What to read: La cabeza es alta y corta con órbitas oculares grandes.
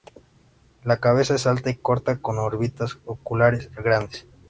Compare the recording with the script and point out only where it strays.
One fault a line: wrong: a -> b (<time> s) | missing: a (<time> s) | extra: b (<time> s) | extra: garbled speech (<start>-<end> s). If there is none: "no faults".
no faults